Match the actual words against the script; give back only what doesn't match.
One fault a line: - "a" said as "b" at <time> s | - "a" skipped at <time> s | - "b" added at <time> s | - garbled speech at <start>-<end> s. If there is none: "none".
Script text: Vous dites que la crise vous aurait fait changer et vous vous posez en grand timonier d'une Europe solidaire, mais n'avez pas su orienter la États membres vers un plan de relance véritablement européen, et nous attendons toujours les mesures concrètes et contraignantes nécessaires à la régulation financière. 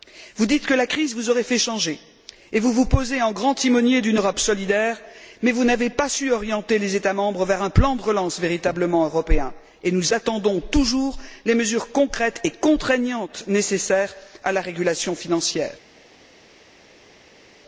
- "vous" added at 5.5 s
- "la" said as "les" at 6.8 s